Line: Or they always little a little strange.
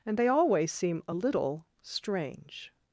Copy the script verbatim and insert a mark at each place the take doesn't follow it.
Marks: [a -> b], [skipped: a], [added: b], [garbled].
[Or -> And] they always [little -> seem] a little strange.